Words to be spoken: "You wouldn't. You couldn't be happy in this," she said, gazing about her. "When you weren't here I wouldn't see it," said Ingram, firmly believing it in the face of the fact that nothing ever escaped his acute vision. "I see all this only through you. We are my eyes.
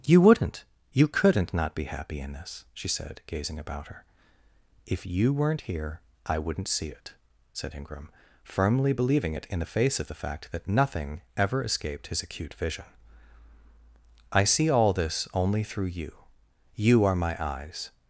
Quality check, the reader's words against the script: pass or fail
fail